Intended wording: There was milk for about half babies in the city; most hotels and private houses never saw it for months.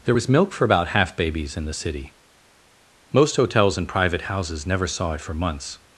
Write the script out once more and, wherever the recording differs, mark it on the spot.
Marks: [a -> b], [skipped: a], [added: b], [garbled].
There was milk for about half babies in the city; most hotels and private houses never saw it for months.